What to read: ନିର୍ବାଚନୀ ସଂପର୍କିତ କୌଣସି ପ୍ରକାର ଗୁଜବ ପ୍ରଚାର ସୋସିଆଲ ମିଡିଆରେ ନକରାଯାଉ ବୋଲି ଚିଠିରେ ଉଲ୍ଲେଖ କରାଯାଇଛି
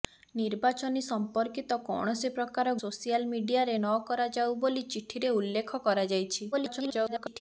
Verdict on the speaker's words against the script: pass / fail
fail